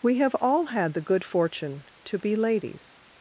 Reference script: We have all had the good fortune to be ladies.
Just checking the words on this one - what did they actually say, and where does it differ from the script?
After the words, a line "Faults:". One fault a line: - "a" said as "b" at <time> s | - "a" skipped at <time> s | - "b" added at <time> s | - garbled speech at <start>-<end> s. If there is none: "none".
We have all had the good fortune to be ladies.
Faults:
none